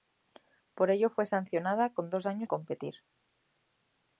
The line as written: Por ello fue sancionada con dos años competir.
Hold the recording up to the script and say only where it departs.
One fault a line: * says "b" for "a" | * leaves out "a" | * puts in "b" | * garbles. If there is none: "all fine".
all fine